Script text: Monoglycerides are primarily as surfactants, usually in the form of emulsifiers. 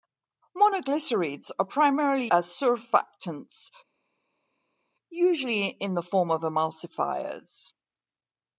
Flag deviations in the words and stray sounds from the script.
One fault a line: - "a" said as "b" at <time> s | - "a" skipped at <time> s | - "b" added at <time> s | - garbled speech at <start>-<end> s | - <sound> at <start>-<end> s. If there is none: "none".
none